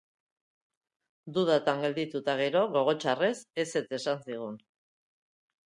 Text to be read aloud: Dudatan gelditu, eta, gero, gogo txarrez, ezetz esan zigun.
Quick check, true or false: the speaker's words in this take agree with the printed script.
true